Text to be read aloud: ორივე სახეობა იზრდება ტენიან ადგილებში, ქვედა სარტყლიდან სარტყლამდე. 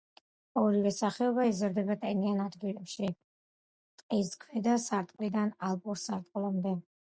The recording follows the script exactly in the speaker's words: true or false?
false